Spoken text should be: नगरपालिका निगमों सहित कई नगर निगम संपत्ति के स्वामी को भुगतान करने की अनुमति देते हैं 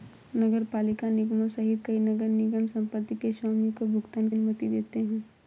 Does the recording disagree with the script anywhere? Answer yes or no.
yes